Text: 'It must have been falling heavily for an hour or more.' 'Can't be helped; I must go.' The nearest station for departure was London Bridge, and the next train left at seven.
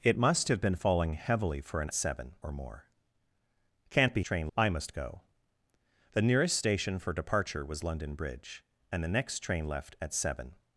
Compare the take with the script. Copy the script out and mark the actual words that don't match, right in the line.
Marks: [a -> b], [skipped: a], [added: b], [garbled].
'It must have been falling heavily for an [hour -> seven] or more.' 'Can't be [helped; -> train] I must go.' The nearest station for departure was London Bridge, and the next train left at seven.